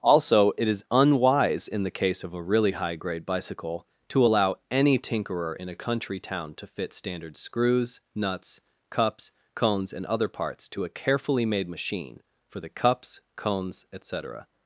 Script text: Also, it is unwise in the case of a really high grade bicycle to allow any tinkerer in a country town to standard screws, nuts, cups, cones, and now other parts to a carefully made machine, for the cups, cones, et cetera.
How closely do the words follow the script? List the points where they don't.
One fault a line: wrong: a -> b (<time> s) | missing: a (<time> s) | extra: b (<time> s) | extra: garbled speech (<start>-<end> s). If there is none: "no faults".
extra: fit (6.7 s)
missing: now (10.1 s)